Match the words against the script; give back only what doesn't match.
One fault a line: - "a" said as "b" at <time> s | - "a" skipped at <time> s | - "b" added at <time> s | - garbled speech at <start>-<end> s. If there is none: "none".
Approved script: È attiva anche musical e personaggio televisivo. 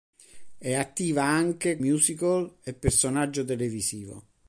none